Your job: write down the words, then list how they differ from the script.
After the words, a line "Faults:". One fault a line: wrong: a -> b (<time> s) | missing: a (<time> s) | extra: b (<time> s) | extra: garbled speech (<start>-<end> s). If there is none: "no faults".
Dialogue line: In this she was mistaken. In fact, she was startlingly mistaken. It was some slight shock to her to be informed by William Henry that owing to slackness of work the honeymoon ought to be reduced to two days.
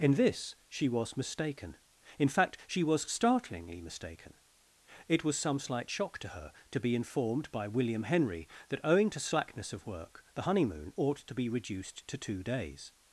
In this she was mistaken. In fact, she was startlingly mistaken. It was some slight shock to her to be informed by William Henry that owing to slackness of work the honeymoon ought to be reduced to two days.
Faults:
no faults